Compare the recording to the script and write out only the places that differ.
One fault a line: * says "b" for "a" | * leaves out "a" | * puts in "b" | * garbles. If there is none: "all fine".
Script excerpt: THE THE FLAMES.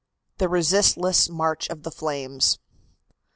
* puts in "RESISTLESS MARCH OF"